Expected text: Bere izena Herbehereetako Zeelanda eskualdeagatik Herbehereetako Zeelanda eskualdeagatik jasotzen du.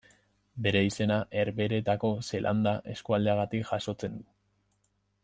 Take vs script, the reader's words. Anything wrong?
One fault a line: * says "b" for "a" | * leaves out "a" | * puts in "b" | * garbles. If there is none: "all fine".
* leaves out "Herbehereetako Zeelanda eskualdeagatik"